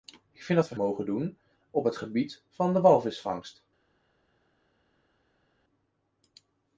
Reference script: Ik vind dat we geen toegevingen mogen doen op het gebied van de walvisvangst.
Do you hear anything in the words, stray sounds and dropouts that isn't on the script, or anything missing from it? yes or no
yes